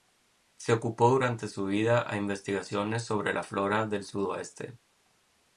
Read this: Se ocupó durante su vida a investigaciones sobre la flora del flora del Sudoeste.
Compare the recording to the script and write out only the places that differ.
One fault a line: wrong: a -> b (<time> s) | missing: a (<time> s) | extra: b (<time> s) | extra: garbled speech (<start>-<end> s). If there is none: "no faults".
missing: flora del (4.0 s)